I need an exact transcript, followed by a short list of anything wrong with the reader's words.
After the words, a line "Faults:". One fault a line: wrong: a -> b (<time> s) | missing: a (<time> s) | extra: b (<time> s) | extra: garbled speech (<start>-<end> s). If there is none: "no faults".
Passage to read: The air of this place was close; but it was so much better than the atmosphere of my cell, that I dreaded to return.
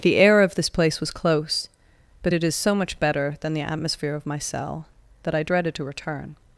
The air of this place was close; but it is so much better than the atmosphere of my cell, that I dreaded to return.
Faults:
wrong: was -> is (2.4 s)